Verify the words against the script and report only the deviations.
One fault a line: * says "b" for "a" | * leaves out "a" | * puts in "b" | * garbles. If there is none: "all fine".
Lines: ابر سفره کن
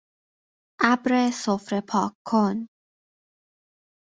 * puts in "پاک"